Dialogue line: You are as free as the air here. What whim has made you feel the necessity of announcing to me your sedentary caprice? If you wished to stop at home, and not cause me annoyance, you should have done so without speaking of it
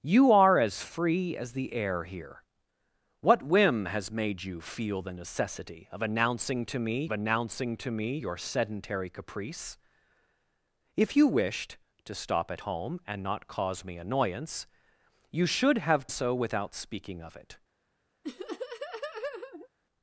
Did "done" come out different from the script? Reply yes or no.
yes